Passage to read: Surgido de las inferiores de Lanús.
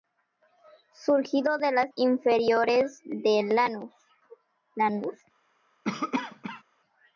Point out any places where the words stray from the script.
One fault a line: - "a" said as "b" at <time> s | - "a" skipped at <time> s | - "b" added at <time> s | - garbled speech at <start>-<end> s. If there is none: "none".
none